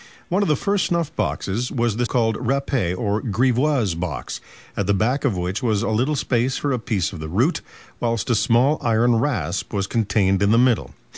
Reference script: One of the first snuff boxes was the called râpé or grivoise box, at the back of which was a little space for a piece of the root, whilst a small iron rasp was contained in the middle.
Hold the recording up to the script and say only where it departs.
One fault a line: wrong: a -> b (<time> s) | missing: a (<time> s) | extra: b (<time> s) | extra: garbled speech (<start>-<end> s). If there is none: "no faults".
no faults